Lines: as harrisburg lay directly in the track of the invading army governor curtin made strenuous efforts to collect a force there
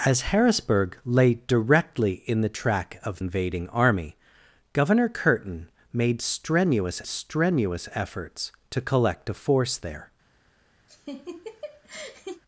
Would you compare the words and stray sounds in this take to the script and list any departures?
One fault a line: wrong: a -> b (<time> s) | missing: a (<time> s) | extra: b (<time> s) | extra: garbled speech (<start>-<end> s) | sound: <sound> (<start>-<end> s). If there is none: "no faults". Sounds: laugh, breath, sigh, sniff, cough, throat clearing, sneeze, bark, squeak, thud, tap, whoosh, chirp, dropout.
missing: the (3.2 s)
extra: strenuous (7.1 s)
sound: laugh (10.9-12.4 s)